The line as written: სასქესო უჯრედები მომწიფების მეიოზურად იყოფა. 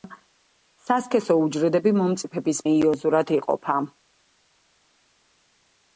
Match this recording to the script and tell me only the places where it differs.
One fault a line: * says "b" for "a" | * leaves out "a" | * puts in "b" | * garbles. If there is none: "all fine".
all fine